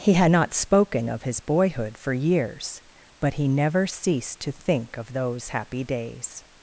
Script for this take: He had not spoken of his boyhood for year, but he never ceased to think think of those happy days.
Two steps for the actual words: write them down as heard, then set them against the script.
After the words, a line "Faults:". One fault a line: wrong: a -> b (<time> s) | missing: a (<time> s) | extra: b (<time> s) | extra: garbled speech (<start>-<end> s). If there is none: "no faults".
He had not spoken of his boyhood for years, but he never ceased to think of those happy days.
Faults:
wrong: year -> years (2.1 s)
missing: think (5.0 s)